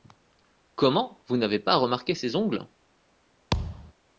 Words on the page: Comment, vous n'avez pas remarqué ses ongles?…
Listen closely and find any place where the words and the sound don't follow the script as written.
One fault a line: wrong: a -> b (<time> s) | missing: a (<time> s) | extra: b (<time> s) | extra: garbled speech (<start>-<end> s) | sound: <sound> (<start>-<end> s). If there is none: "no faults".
sound: thud (3.5-3.9 s)